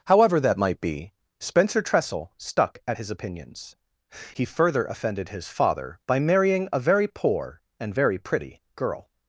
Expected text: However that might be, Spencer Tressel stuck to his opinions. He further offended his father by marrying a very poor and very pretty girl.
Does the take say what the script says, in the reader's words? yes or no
no